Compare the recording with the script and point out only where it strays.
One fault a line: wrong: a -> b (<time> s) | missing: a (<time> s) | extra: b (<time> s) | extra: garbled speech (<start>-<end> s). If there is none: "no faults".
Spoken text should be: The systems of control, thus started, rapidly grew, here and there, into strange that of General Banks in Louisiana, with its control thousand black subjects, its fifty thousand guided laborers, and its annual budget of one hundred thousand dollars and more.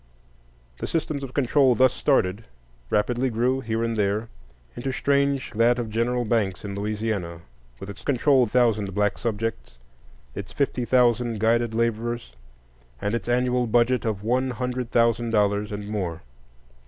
no faults